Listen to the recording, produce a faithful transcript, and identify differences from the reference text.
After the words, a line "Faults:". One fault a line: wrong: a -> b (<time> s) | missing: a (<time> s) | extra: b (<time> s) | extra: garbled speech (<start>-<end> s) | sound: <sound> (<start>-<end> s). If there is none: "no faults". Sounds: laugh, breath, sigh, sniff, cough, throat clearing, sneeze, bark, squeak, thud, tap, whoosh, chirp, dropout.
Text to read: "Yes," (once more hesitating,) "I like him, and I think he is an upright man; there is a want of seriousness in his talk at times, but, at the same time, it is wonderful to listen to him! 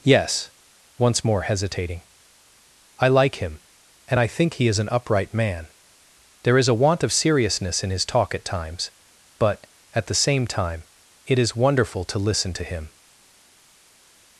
"Yes," (once more hesitating,) "I like him, and I think he is an upright man; there is a want of seriousness in his talk at times, but, at the same time, it is wonderful to listen to him!
Faults:
no faults